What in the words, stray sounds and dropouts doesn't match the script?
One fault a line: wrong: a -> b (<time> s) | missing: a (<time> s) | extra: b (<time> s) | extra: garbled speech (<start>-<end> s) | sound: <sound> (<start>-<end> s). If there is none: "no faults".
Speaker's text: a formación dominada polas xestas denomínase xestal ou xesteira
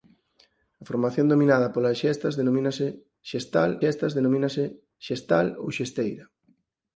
extra: xestas denomínase xestal (3.8 s)